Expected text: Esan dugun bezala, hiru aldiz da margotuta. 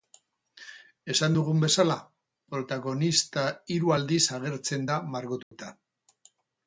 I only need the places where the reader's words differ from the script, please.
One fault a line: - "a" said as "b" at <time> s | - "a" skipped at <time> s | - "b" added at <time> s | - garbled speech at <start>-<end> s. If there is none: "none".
- "protagonista" added at 2.5 s
- "agertzen" added at 4.4 s